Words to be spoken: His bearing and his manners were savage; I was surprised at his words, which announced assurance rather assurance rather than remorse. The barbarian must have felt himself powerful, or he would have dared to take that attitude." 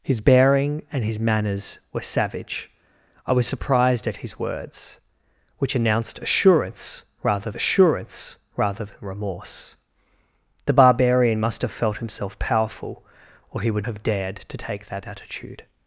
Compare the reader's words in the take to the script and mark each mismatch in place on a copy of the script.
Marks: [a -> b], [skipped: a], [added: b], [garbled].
His bearing and his manners were savage; I was surprised at his words, which announced assurance rather assurance rather than remorse. The barbarian must have felt himself powerful, or he would have dared to take that attitude."